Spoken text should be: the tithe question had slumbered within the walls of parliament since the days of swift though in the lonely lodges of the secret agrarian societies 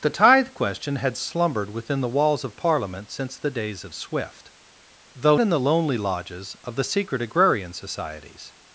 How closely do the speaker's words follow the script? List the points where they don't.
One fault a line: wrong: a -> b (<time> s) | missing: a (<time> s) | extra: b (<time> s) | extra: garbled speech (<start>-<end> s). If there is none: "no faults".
no faults